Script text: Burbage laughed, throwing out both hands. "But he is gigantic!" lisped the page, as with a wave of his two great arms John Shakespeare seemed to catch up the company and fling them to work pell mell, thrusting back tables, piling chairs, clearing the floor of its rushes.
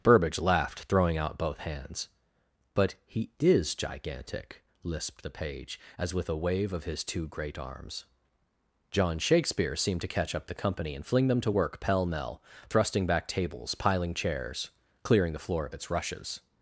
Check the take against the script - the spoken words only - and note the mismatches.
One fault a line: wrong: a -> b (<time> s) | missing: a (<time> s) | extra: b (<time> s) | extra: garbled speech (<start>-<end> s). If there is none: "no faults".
no faults